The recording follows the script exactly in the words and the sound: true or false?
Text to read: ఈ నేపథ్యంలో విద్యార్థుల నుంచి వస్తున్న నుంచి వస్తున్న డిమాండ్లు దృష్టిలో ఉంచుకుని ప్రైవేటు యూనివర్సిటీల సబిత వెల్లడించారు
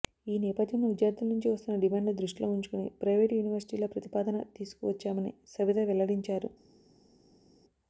false